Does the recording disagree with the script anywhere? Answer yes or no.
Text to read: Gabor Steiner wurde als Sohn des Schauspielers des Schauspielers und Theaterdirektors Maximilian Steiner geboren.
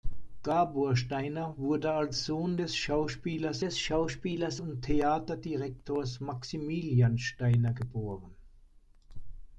no